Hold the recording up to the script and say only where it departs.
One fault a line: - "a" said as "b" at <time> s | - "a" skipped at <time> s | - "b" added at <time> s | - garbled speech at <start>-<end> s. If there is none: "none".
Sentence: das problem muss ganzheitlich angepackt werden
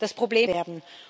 - "muss ganzheitlich angepackt" skipped at 0.5 s